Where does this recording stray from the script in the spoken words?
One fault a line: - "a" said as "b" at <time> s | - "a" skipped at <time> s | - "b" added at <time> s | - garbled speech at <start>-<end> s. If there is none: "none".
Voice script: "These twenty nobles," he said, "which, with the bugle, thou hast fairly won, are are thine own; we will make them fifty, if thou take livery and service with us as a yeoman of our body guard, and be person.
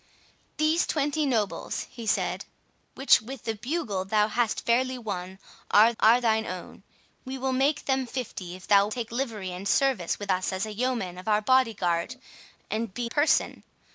none